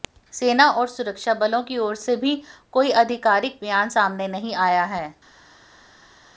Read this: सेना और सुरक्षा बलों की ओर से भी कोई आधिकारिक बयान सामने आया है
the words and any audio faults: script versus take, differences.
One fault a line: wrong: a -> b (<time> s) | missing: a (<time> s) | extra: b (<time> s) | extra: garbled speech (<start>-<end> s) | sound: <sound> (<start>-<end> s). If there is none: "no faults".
extra: नहीं (4.3 s)